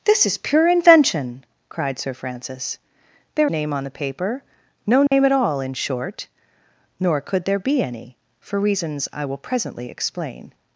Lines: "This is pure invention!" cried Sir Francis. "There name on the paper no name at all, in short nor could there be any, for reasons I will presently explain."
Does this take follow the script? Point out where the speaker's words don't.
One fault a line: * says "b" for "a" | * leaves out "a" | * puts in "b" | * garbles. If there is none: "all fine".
all fine